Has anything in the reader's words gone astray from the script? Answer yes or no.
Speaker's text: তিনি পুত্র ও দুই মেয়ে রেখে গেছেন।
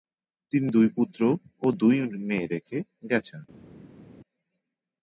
yes